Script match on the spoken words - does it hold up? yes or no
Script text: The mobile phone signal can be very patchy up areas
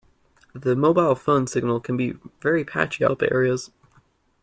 yes